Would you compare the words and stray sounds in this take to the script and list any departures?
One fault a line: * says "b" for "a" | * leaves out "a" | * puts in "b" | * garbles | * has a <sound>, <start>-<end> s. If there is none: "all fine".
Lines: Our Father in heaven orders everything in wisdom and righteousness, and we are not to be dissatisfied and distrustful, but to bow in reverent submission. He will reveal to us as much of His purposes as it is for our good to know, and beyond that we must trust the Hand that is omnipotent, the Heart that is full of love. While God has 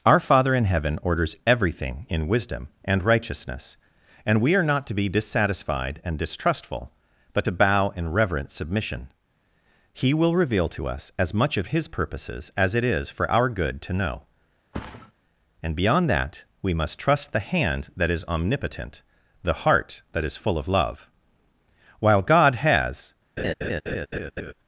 * has a thud, 14.7-15.1 s
* has a laugh, 23.4-24.5 s